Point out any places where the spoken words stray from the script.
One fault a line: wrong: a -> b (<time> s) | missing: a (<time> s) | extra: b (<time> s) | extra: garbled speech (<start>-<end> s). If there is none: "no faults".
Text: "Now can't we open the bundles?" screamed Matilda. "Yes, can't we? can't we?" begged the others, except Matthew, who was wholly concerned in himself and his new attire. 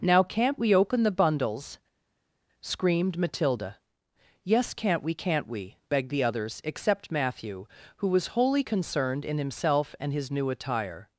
no faults